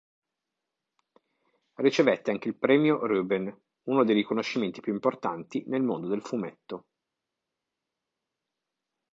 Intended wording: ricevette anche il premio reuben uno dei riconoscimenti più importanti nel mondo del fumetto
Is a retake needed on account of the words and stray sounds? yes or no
no